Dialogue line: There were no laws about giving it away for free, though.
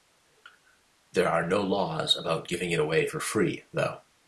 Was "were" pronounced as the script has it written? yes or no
no